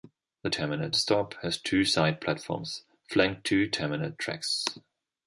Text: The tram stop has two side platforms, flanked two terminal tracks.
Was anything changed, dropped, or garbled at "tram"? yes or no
yes